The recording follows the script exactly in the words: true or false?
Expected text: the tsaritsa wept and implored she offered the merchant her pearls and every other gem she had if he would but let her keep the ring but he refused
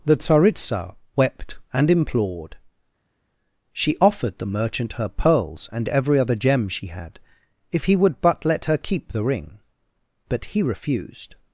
true